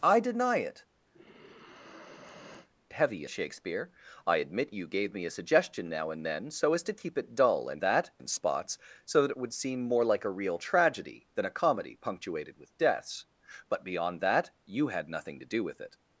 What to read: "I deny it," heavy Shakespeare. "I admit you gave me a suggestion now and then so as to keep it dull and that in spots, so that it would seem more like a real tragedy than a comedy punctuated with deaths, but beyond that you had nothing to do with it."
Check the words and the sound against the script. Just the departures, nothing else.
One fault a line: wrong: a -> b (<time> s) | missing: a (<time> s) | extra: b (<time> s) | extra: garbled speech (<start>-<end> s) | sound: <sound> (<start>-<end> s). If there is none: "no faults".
sound: sigh (1.1-2.7 s)